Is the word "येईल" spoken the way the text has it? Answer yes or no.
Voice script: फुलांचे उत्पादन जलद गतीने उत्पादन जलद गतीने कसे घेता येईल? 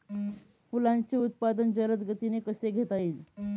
yes